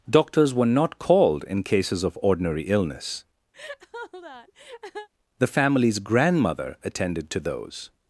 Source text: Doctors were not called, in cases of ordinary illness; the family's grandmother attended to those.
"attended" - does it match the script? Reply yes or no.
yes